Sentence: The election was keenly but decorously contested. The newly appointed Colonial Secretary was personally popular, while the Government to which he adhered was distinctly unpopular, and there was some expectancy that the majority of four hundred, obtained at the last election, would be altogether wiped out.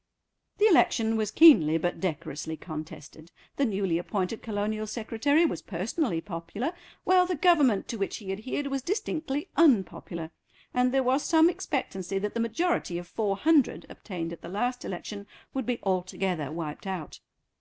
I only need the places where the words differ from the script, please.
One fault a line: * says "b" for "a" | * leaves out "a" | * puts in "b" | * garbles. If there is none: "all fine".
all fine